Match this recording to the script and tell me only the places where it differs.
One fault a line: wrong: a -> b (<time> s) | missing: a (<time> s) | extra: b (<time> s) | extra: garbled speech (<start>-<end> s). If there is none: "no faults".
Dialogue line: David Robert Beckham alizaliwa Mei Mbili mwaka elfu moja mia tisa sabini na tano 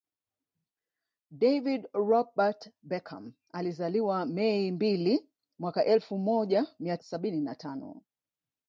missing: tisa (7.0 s)